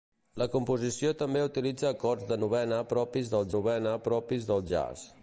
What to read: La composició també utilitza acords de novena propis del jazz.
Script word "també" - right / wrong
right